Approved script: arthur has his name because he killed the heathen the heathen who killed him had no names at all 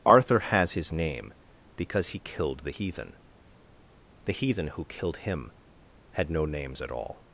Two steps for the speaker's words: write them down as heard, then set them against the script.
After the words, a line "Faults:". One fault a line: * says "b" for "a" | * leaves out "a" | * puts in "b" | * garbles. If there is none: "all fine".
arthur has his name because he killed the heathen the heathen who killed him had no names at all
Faults:
all fine